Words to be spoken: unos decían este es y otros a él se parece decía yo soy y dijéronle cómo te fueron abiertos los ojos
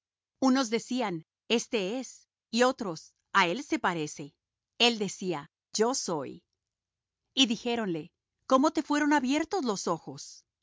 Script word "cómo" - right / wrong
right